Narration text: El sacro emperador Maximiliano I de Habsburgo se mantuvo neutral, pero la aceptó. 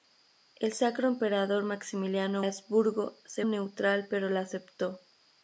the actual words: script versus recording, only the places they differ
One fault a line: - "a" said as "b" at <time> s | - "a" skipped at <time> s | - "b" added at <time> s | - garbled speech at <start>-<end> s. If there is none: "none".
- "I de" skipped at 2.4 s
- "mantuvo" skipped at 3.4 s